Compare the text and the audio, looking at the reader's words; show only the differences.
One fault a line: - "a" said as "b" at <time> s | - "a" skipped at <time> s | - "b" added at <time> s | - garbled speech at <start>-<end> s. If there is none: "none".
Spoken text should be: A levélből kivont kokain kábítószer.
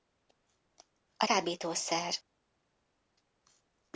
- "levélből kivont kokain" skipped at 1.2 s